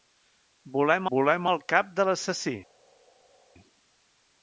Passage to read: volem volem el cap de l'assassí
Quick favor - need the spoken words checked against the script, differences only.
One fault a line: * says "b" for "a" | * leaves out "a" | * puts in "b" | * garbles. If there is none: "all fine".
all fine